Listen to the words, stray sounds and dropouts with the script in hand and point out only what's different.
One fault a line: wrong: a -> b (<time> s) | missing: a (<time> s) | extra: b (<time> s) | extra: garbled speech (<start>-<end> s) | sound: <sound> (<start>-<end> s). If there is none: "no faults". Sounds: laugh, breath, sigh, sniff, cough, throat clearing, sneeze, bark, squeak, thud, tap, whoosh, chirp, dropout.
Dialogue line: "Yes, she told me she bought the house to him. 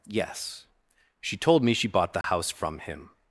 sound: dropout (2.2-2.2 s)
wrong: to -> from (2.5 s)